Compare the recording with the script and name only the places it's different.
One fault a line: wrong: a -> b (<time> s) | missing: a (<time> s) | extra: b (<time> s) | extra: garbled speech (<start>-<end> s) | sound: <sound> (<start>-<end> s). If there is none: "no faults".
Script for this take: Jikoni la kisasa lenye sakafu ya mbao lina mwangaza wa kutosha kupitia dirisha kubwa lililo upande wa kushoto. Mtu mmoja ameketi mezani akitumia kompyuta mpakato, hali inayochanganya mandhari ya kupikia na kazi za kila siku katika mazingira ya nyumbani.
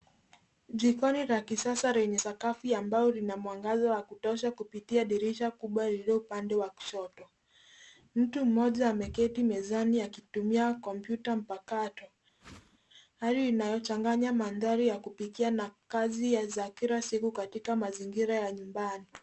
sound: whoosh (12.4-12.8 s)